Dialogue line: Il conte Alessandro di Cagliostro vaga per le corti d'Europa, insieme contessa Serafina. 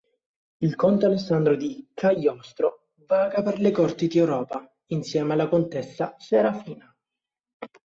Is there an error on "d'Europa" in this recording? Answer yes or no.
no